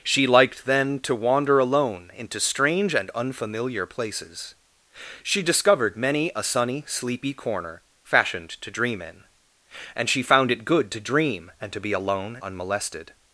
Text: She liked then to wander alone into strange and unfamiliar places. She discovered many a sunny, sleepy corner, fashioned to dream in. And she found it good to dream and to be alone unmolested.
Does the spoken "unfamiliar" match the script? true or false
true